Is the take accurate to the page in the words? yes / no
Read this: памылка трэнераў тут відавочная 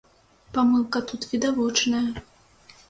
no